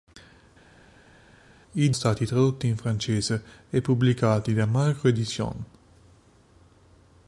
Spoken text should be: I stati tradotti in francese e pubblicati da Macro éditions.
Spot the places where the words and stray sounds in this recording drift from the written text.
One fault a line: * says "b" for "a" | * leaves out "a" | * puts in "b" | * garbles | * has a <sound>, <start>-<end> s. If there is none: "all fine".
all fine